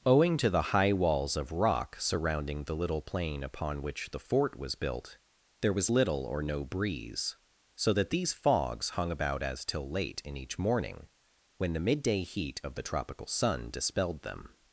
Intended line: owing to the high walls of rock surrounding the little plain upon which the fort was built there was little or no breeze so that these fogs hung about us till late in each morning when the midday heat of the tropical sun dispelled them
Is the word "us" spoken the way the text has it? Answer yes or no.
no